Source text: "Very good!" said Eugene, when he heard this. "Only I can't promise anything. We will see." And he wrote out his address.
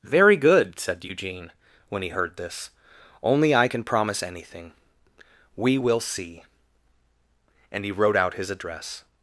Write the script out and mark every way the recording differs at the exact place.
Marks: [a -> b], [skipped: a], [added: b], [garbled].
"Very good!" said Eugene, when he heard this. "Only I [can't -> can] promise anything. We will see." And he wrote out his address.